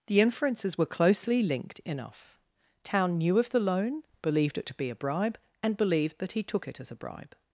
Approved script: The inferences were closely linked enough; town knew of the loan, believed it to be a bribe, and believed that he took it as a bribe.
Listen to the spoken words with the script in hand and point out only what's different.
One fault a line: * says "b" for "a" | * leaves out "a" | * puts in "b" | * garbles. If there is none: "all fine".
all fine